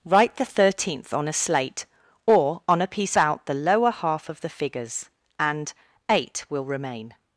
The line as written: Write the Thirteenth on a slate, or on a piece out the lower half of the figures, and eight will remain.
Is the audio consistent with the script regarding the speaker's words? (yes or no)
yes